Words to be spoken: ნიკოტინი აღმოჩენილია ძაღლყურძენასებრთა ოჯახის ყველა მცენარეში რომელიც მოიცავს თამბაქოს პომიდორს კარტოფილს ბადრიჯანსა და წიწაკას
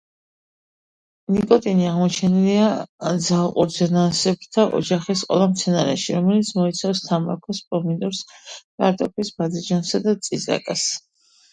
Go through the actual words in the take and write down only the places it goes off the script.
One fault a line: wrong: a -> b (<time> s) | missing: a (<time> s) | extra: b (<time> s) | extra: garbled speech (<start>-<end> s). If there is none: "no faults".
no faults